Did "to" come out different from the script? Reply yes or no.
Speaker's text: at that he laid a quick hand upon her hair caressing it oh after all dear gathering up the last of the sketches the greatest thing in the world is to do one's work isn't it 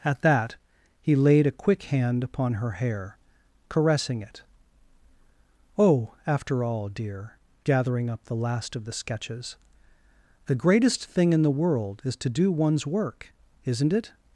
no